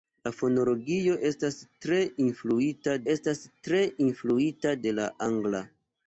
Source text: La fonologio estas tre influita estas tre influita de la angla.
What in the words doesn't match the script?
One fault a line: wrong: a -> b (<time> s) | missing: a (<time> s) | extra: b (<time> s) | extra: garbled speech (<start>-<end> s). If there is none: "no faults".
no faults